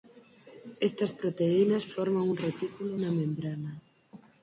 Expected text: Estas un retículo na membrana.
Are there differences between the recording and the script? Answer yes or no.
yes